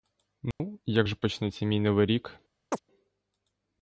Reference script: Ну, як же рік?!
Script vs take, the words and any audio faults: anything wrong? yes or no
yes